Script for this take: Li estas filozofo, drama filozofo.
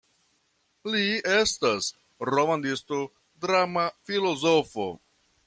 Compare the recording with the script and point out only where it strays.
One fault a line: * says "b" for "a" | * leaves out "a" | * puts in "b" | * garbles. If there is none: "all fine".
* says "romanisto" for "filozofo"